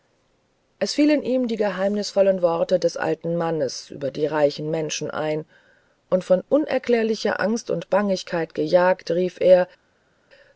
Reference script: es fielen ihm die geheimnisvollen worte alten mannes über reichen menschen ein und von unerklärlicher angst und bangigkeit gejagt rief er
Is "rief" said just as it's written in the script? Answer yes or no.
yes